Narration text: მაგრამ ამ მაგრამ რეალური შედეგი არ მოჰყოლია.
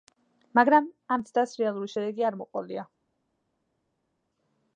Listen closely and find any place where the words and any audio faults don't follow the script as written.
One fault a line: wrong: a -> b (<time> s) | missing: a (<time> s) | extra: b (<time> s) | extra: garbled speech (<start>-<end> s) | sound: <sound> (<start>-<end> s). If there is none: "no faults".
wrong: მაგრამ -> ცდას (1.3 s)